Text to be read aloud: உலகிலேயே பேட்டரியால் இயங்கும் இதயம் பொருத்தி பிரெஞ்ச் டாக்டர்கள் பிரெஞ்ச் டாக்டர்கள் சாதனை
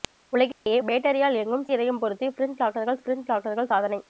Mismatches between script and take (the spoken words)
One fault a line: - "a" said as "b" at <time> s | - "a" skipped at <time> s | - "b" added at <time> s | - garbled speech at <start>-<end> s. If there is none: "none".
none